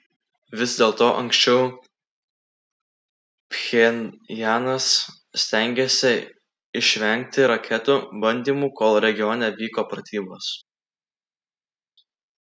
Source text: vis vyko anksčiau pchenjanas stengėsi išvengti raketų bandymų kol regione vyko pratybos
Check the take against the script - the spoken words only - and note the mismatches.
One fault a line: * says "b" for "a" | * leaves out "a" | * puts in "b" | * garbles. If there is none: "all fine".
* says "dėlto" for "vyko"